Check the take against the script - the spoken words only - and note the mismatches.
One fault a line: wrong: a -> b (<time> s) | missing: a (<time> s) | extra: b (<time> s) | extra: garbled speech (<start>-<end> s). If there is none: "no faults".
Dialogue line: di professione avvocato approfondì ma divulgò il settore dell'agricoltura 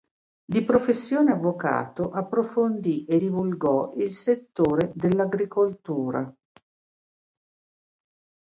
wrong: ma -> e (3.0 s)